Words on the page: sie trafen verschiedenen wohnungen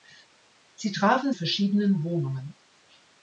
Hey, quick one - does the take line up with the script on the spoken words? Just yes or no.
yes